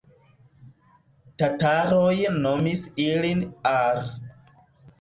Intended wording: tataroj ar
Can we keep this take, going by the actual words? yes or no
no